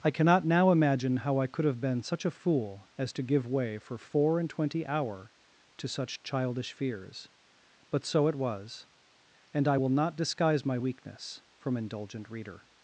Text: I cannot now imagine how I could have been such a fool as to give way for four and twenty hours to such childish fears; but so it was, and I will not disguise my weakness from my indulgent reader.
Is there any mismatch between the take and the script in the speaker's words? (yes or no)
yes